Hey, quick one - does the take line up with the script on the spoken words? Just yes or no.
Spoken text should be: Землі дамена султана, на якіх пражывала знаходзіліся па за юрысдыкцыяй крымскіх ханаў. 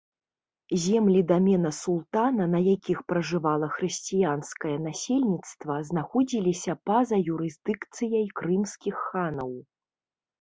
no